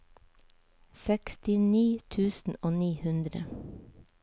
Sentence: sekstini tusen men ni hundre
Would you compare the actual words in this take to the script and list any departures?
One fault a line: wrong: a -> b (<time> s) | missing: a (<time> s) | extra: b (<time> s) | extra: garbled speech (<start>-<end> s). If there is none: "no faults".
wrong: men -> og (2.6 s)